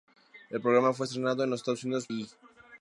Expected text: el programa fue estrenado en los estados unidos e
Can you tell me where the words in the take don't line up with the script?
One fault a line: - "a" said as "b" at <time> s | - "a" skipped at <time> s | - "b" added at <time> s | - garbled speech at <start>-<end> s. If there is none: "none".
none